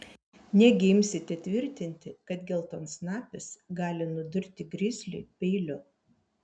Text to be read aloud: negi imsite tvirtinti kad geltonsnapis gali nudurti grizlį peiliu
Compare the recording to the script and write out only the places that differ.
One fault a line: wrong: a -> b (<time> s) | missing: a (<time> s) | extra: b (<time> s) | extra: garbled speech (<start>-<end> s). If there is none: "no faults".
no faults